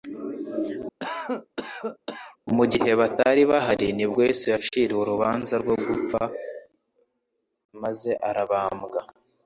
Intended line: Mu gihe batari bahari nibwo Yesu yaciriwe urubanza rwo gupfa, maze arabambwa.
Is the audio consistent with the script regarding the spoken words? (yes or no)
yes